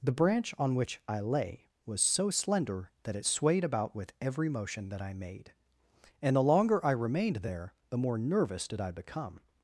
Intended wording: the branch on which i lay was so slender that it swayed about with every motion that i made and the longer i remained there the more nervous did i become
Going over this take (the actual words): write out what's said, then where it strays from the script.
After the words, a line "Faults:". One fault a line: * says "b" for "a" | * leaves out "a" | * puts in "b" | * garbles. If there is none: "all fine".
the branch on which i lay was so slender that it swayed about with every motion that i made and the longer i remained there the more nervous did i become
Faults:
all fine